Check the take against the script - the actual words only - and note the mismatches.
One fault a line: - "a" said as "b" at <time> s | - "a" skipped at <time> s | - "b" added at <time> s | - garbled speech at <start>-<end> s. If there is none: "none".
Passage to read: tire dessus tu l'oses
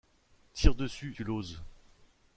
none